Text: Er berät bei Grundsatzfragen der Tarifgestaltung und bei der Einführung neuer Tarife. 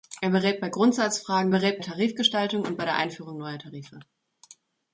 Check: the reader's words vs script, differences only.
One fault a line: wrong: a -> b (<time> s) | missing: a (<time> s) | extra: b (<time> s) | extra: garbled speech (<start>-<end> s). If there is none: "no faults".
wrong: der -> berät (1.5 s)